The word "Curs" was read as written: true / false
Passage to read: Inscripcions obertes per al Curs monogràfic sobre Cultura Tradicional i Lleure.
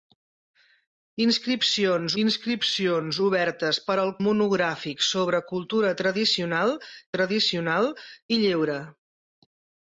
false